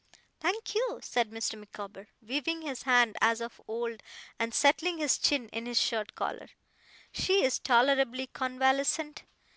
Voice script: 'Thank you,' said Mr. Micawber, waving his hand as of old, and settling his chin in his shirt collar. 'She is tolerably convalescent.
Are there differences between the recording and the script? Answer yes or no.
no